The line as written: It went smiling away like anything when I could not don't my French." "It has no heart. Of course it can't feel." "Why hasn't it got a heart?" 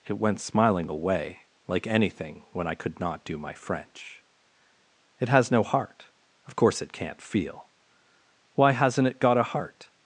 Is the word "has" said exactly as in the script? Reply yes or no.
yes